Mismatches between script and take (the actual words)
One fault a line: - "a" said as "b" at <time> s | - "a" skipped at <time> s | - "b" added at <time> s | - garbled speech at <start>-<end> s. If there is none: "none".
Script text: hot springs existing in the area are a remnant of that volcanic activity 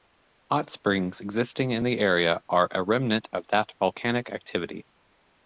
none